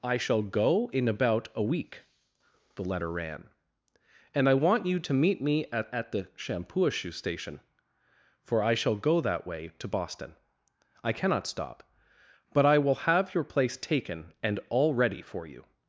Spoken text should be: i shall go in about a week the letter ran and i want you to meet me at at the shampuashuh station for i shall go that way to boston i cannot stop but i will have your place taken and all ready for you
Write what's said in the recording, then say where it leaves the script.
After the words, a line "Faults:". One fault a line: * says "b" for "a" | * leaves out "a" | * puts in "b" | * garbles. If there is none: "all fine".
i shall go in about a week the letter ran and i want you to meet me at at the shampuashuh station for i shall go that way to boston i cannot stop but i will have your place taken and all ready for you
Faults:
all fine